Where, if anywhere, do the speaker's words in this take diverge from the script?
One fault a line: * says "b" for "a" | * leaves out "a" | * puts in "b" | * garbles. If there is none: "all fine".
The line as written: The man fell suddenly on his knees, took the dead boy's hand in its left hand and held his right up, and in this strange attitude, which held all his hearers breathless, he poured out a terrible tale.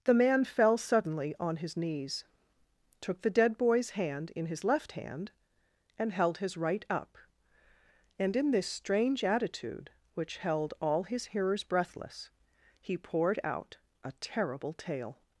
* says "his" for "its"